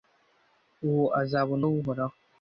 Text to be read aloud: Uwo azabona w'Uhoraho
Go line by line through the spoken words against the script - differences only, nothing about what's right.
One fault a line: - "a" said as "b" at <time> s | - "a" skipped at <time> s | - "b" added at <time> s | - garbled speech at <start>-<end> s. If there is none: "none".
none